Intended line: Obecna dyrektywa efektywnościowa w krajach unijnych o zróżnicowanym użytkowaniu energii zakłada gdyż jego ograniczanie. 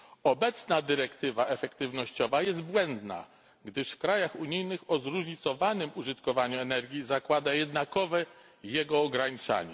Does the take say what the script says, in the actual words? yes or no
no